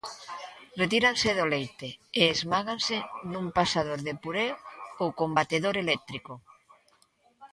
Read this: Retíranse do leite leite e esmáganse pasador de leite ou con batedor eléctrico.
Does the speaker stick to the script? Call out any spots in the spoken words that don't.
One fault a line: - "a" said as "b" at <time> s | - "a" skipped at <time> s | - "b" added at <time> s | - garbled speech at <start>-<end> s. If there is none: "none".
- "leite" skipped at 1.9 s
- "nun" added at 3.3 s
- "leite" said as "puré" at 4.2 s